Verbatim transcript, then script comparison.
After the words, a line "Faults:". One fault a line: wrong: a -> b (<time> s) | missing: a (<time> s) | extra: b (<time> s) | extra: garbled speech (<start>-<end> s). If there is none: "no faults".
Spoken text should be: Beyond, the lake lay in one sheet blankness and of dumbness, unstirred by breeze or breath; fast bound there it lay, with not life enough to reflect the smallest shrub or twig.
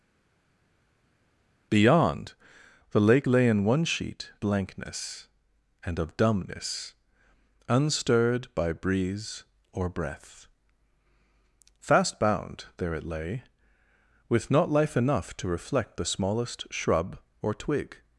Beyond, the lake lay in one sheet blankness and of dumbness, unstirred by breeze or breath; fast bound there it lay, with not life enough to reflect the smallest shrub or twig.
Faults:
no faults